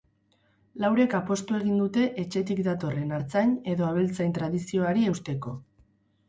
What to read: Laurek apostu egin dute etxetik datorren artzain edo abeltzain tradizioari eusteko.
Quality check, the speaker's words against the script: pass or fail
pass